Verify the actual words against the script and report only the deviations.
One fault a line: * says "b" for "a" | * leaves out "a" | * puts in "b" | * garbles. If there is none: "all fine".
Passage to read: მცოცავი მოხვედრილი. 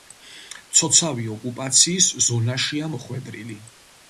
* puts in "ოკუპაციის ზონაშია"